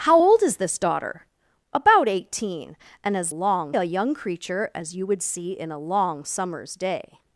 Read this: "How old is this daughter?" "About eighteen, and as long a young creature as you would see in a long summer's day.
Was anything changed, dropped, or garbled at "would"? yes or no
no